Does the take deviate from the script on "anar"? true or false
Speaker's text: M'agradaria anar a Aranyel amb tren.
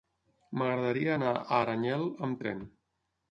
false